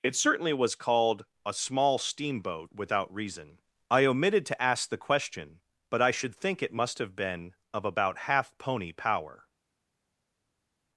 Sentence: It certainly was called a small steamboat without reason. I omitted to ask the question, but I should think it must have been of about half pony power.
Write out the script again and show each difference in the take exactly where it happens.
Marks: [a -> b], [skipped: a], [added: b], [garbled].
It certainly was called a small steamboat without reason. I omitted to ask the question, but I should think it must have been of about half pony power.